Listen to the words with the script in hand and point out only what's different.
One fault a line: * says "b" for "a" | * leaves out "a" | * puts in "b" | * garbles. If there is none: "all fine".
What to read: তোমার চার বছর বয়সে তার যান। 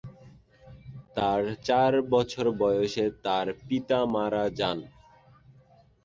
* says "তার" for "তোমার"
* puts in "পিতা মারা"